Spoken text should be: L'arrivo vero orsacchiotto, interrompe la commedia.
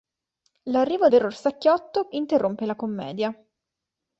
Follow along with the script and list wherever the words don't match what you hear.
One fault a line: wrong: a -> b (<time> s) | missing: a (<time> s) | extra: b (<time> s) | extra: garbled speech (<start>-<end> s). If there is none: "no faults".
no faults